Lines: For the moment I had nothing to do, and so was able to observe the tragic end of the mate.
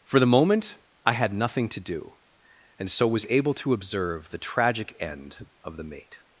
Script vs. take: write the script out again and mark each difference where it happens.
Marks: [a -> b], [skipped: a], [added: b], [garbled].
For the moment I had nothing to do, and so was able to observe the tragic end of the mate.